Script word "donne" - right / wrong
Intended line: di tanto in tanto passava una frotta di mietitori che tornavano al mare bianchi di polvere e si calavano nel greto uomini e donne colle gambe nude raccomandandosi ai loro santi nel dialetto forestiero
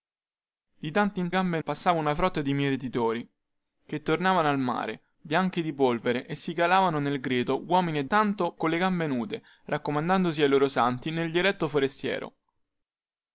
wrong